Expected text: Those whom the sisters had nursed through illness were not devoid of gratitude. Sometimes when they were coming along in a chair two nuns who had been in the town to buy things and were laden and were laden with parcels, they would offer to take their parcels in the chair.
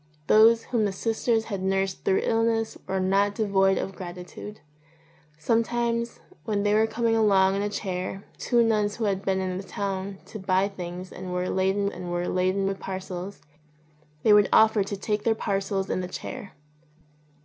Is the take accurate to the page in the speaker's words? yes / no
yes